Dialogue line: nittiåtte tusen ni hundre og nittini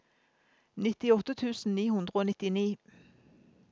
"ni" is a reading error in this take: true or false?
false